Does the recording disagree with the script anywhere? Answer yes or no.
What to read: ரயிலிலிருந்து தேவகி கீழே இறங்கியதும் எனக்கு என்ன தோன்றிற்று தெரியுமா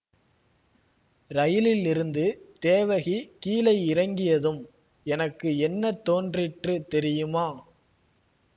no